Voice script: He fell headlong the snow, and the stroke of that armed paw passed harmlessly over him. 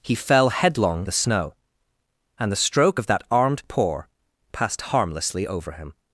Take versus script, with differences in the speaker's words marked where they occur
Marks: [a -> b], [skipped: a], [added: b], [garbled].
He fell headlong the snow, and the stroke of that armed paw passed harmlessly over him.